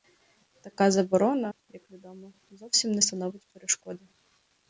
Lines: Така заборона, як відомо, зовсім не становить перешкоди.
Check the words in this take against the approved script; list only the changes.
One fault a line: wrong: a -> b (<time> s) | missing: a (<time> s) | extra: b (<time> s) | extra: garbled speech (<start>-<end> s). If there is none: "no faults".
missing: як (1.5 s)